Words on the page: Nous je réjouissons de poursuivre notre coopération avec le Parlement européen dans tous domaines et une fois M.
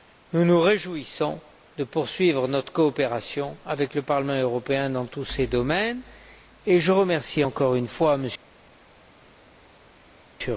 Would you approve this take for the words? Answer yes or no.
no